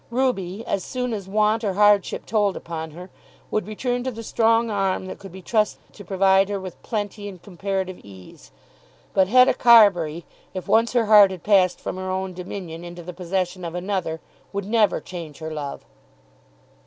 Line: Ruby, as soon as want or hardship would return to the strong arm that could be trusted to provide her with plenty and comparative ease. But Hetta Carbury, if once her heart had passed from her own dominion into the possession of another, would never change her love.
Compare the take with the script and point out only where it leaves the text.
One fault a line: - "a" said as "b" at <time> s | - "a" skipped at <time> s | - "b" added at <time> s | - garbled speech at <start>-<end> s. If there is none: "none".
- "told upon her" added at 2.2 s